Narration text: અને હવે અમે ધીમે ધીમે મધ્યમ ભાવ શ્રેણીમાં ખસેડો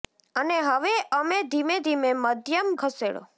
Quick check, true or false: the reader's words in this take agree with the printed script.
false